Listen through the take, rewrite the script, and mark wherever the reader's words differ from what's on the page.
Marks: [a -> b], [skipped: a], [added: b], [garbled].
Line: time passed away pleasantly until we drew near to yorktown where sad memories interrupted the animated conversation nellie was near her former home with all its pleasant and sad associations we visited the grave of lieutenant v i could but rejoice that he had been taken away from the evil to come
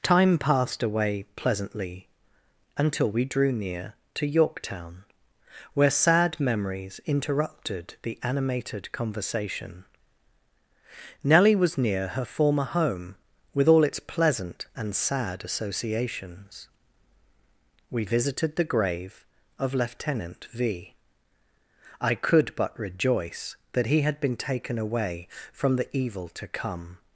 time passed away pleasantly until we drew near to yorktown where sad memories interrupted the animated conversation nellie was near her former home with all its pleasant and sad associations we visited the grave of lieutenant v i could but rejoice that he had been taken away from the evil to come